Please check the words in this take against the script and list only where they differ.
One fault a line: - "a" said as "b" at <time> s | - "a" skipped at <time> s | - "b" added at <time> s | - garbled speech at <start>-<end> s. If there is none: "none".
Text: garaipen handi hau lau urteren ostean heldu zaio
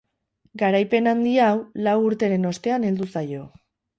none